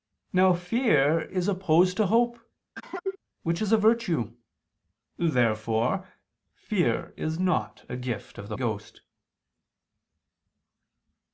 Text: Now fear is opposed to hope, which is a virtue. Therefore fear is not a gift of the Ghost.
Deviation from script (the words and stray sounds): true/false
true